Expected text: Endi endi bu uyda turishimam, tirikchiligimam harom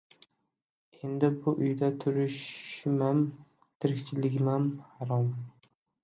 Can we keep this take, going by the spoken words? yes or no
no